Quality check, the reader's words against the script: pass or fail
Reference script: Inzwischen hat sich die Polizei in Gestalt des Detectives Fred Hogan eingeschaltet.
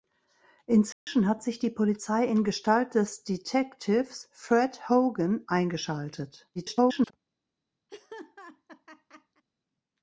fail